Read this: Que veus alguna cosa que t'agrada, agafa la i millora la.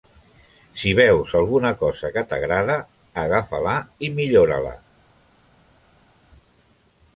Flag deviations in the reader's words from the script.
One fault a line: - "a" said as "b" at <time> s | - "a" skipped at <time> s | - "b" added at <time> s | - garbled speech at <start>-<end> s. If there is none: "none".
- "Que" said as "Si" at 0.8 s